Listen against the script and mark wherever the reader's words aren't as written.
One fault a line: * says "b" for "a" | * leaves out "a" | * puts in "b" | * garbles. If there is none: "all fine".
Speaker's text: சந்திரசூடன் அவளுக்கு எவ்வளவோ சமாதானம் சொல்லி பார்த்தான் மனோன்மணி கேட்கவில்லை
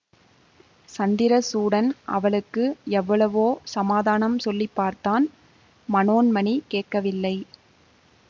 all fine